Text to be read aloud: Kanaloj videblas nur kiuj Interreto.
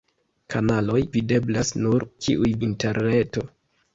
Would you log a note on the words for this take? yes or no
no